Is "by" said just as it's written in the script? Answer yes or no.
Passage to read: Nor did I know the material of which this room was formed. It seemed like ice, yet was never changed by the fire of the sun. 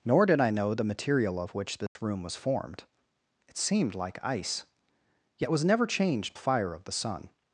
no